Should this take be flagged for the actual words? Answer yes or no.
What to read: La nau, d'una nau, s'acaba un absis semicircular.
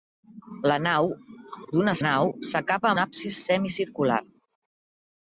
no